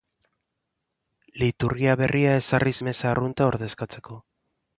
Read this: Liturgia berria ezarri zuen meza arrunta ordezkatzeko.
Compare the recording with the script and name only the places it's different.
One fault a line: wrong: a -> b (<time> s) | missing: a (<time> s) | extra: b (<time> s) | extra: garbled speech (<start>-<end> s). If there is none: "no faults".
missing: zuen (2.7 s)